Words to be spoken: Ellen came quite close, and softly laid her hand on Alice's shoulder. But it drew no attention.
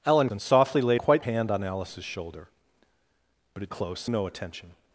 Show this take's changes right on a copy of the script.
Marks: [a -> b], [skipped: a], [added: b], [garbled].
Ellen [skipped: came quite close,] and softly laid [her -> quite] hand on Alice's shoulder. But it [drew -> close] no attention.